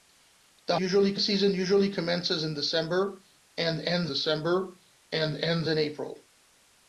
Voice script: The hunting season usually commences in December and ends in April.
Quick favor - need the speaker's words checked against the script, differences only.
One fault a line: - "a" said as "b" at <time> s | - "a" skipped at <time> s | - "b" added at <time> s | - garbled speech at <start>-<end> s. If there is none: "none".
- "hunting" said as "usually" at 0.7 s
- "December and ends" added at 4.1 s